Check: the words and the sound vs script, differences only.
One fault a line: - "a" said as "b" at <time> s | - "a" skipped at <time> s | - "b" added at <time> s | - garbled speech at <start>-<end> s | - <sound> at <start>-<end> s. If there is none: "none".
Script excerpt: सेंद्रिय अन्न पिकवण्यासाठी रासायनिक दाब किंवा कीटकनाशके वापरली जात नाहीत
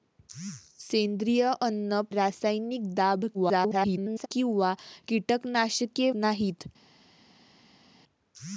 - "पिकवण्यासाठी" skipped at 2.0 s
- garbled speech at 3.3-4.3 s
- "वापरली जात" skipped at 6.1 s